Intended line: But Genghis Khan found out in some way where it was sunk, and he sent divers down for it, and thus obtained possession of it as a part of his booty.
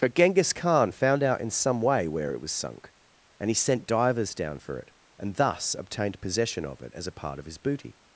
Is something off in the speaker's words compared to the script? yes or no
no